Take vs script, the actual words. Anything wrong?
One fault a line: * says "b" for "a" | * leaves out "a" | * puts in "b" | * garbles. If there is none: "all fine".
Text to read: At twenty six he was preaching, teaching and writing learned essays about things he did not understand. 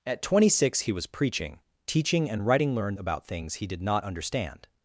* leaves out "essays"